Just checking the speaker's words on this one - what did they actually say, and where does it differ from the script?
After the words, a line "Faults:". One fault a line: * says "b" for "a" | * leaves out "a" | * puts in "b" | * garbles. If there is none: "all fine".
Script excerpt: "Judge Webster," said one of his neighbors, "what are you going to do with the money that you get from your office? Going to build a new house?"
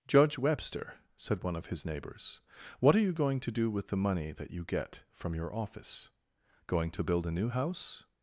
"Judge Webster," said one of his neighbors, "what are you going to do with the money that you get from your office? Going to build a new house?"
Faults:
all fine